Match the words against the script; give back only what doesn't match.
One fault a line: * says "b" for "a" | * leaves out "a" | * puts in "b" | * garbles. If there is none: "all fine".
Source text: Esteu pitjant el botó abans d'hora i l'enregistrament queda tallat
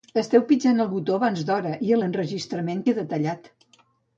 all fine